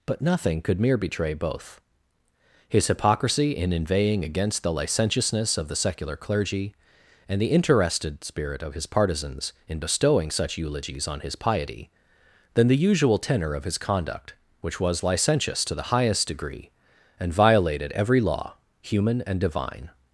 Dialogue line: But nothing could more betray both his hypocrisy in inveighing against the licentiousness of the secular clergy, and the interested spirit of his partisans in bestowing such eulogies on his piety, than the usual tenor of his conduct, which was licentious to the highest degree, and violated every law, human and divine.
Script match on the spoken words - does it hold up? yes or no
no